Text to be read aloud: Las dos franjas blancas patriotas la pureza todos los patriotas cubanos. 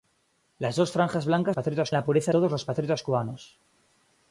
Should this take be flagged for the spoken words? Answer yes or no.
no